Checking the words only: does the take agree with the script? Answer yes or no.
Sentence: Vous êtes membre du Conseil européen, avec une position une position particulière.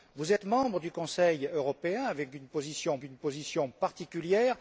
yes